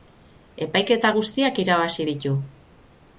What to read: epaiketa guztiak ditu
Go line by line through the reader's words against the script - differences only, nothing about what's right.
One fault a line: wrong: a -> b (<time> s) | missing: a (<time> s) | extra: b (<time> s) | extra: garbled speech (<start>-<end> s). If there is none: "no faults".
extra: irabazi (1.6 s)